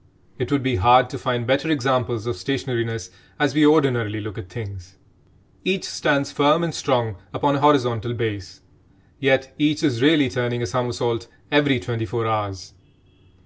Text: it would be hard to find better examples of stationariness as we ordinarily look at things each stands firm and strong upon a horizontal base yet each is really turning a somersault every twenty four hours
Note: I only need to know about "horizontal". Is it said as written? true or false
true